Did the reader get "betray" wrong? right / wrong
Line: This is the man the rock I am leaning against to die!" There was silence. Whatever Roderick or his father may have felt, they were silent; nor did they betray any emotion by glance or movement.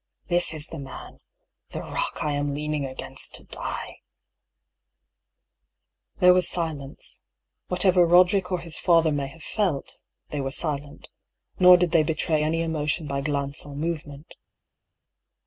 right